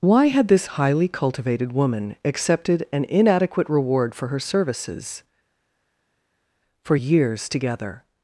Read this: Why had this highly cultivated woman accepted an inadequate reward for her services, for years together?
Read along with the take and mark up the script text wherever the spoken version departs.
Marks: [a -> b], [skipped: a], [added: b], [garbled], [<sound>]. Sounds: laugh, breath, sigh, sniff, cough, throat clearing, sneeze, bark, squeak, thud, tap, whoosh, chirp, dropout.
Why had this highly cultivated woman accepted an inadequate reward for her services, for years together?